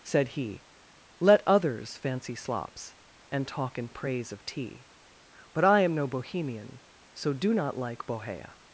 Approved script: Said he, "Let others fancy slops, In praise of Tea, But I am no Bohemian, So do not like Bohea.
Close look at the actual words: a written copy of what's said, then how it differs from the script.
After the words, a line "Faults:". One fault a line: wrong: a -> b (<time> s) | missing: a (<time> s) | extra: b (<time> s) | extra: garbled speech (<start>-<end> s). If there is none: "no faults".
Said he, "Let others fancy slops, And talk in praise of Tea, But I am no Bohemian, So do not like Bohea.
Faults:
extra: And talk (3.3 s)